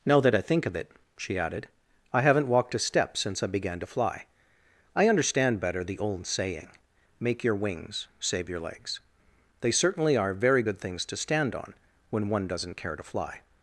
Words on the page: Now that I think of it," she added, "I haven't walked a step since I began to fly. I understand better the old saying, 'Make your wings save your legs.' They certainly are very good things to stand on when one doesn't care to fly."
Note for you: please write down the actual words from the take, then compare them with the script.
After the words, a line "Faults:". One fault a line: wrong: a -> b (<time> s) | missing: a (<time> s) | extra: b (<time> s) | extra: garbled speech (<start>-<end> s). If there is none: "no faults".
Now that I think of it," she added, "I haven't walked a step since I began to fly. I understand better the old saying, 'Make your wings save your legs.' They certainly are very good things to stand on when one doesn't care to fly."
Faults:
no faults